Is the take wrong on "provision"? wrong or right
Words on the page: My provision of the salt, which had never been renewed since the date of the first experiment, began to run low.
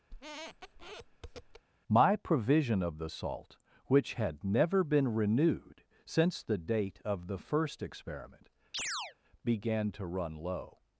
right